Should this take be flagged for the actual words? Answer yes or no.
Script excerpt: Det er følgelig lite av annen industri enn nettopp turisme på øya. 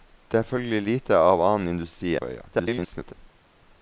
yes